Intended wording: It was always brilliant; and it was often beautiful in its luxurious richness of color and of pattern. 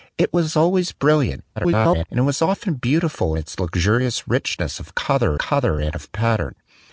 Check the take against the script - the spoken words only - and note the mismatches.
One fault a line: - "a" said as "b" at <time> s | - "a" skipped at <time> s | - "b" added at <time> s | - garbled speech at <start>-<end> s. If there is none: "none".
- garbled speech at 1.6-2.1 s
- "color" added at 5.4 s